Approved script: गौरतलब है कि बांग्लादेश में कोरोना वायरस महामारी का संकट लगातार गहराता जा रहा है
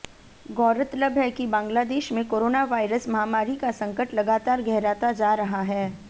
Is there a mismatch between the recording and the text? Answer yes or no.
no